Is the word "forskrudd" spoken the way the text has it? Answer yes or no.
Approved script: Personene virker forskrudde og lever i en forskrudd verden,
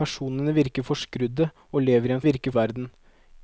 no